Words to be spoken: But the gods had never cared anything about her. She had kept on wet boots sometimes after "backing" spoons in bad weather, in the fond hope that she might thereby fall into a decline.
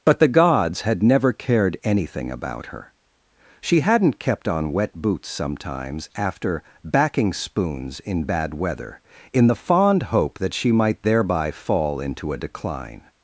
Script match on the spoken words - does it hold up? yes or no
no